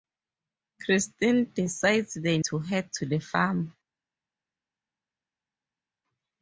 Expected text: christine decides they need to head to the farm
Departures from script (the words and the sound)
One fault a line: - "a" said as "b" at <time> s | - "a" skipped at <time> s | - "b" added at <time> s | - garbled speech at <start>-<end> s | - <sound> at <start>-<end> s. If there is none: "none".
- "need" skipped at 2.4 s